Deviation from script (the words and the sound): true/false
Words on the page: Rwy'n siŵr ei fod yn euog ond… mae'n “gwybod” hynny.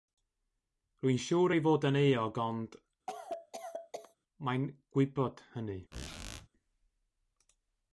true